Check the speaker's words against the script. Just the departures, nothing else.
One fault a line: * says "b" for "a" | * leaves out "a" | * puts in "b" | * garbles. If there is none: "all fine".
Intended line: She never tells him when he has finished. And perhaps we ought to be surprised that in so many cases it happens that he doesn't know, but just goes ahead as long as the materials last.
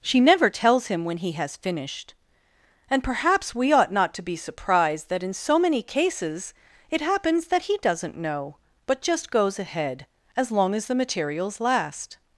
* puts in "not"